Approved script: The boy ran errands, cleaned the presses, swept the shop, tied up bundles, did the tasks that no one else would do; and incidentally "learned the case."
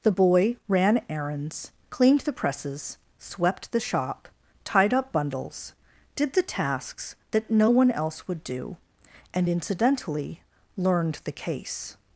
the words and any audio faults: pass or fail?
pass